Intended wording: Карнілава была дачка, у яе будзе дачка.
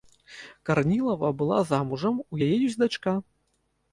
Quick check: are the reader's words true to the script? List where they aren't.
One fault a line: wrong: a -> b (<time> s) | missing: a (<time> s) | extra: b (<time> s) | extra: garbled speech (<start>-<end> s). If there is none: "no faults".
wrong: дачка -> замужам (1.7 s)
wrong: будзе -> ёсць (2.7 s)